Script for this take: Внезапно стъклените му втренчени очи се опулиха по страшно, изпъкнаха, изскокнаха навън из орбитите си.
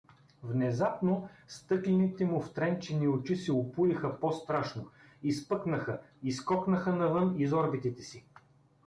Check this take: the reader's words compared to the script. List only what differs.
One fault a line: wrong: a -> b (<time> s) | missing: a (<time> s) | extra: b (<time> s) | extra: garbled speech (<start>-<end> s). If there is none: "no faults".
no faults